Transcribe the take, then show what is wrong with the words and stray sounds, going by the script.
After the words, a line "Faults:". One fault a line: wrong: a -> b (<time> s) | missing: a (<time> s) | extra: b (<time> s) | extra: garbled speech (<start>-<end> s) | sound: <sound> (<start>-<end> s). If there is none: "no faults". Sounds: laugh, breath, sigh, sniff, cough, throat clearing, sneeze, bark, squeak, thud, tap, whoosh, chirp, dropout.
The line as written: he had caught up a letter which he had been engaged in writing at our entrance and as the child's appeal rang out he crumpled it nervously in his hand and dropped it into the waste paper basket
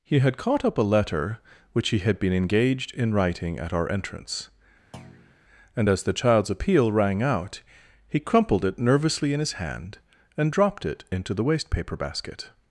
he had caught up a letter which he had been engaged in writing at our entrance and as the child's appeal rang out he crumpled it nervously in his hand and dropped it into the waste paper basket
Faults:
sound: thud (4.9-5.4 s)